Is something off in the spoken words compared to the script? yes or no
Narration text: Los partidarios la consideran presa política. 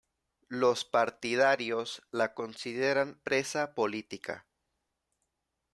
no